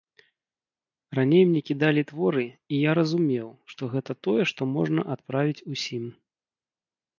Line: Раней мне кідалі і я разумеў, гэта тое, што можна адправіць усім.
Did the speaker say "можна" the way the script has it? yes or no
yes